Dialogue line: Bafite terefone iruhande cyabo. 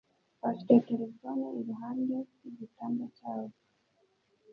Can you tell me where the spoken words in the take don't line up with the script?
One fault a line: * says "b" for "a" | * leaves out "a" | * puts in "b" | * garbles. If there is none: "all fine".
* puts in "rw'igitanda"